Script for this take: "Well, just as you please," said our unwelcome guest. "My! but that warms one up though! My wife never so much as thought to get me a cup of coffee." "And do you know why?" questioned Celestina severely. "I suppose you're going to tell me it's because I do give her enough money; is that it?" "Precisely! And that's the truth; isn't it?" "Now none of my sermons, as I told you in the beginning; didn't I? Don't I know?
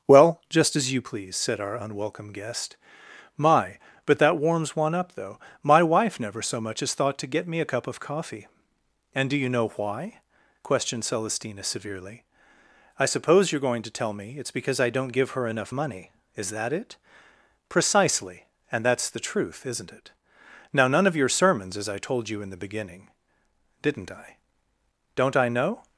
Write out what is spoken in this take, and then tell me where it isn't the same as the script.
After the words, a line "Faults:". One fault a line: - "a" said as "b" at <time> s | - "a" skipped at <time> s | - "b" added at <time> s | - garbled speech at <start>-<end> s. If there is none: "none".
"Well, just as you please," said our unwelcome guest. "My! but that warms one up though! My wife never so much as thought to get me a cup of coffee." "And do you know why?" questioned Celestina severely. "I suppose you're going to tell me it's because I don't give her enough money; is that it?" "Precisely! And that's the truth; isn't it?" "Now none of your sermons, as I told you in the beginning; didn't I? Don't I know?
Faults:
- "do" said as "don't" at 14.9 s
- "my" said as "your" at 21.2 s